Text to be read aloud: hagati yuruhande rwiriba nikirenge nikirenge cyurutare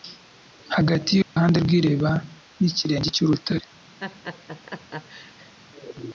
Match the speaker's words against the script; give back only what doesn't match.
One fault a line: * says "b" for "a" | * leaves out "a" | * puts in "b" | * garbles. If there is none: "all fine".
* leaves out "nikirenge"